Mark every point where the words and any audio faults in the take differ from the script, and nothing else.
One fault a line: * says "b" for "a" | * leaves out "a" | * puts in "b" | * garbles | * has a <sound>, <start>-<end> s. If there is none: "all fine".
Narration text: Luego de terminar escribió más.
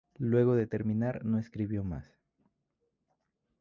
* puts in "no"